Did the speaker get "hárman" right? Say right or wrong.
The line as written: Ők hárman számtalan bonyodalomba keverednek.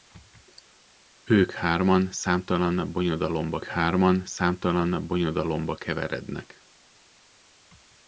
right